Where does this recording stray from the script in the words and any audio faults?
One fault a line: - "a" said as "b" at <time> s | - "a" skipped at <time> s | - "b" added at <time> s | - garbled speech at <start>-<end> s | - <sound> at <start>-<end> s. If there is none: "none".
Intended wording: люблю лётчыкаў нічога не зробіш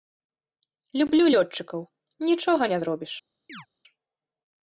- chirp at 3.5-3.7 s